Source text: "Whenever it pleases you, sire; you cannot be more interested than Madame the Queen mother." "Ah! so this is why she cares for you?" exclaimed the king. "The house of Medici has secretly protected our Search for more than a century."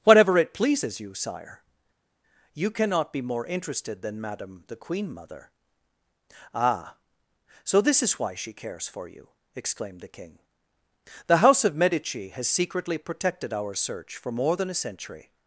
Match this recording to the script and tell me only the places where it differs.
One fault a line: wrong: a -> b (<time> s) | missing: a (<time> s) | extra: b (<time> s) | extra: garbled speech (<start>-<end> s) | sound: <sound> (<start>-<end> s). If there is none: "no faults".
wrong: Whenever -> Whatever (0.0 s)